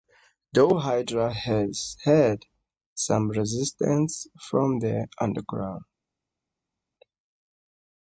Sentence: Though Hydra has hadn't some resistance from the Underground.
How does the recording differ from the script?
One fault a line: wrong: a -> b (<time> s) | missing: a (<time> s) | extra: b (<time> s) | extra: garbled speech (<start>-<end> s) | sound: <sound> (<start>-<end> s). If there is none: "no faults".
wrong: hadn't -> had (2.0 s)